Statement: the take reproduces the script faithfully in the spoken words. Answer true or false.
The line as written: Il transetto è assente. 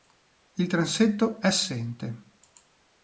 true